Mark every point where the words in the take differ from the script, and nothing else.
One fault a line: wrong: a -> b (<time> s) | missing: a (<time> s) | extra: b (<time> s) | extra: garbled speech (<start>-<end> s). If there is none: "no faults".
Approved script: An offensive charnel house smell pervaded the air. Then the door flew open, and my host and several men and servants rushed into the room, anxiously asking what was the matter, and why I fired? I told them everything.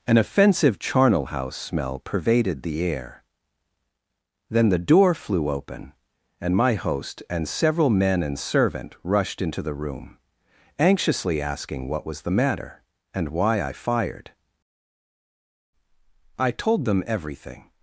wrong: servants -> servant (8.4 s)